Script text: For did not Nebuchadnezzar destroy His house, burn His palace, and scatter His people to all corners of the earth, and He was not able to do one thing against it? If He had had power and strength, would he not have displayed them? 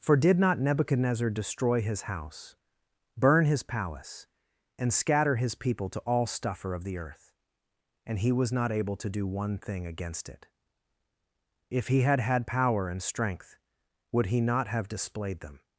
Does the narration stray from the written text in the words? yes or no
yes